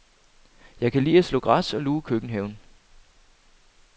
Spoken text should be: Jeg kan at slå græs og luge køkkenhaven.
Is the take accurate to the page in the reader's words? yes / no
no